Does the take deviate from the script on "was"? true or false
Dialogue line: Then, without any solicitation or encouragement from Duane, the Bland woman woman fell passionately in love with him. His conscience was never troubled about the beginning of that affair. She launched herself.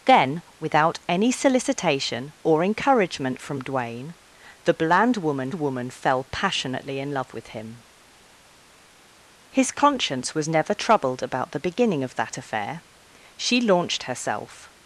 false